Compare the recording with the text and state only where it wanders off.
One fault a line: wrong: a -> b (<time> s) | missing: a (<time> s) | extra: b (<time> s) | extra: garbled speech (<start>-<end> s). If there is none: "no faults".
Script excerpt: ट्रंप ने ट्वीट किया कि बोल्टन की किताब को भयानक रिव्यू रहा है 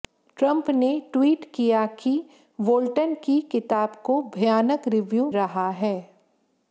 no faults